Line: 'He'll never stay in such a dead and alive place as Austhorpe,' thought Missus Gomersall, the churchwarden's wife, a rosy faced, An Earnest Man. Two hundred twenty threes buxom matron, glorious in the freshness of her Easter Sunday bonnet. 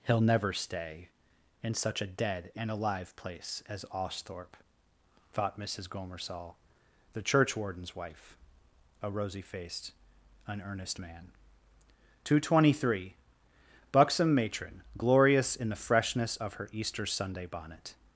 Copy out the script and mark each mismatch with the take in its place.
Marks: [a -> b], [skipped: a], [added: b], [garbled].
'He'll never stay in such a dead and alive place as Austhorpe,' thought Missus Gomersall, the churchwarden's wife, a rosy faced, An Earnest Man. Two hundred twenty [threes -> three] buxom matron, glorious in the freshness of her Easter Sunday bonnet.